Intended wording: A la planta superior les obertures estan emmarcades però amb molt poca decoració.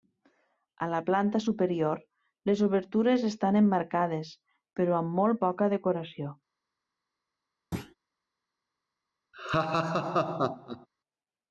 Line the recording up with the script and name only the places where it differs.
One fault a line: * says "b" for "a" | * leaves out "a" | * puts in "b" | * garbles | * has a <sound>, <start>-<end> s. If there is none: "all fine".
* has a thud, 7.7-7.9 s
* has a laugh, 9.3-10.9 s